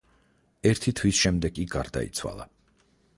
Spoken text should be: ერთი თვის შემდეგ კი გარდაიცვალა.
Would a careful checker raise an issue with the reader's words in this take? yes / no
no